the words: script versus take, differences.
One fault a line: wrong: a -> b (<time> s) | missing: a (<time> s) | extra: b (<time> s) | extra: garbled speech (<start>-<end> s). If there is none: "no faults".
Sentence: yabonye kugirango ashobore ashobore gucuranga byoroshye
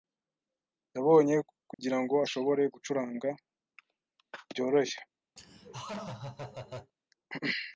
missing: ashobore (2.6 s)